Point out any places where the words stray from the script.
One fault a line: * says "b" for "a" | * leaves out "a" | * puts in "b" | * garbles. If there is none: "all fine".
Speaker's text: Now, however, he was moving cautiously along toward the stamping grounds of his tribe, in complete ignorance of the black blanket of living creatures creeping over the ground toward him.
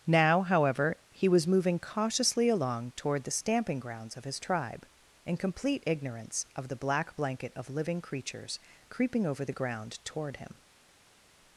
all fine